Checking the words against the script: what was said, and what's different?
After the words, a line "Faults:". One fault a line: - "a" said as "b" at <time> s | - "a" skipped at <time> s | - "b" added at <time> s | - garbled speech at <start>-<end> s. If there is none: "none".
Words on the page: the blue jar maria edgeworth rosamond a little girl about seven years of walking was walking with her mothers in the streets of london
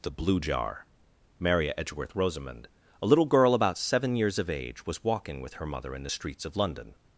the blue jar maria edgeworth rosamond a little girl about seven years of age was walking with her mother in the streets of london
Faults:
- "walking" said as "age" at 4.5 s
- "mothers" said as "mother" at 5.7 s